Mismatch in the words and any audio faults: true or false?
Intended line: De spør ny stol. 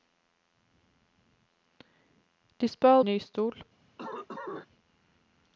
true